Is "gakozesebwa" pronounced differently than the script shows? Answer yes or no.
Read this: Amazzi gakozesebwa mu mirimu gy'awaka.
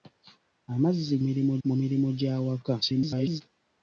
yes